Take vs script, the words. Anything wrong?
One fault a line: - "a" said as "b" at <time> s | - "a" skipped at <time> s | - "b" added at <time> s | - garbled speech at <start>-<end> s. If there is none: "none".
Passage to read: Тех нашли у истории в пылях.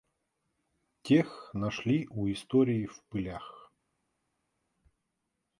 none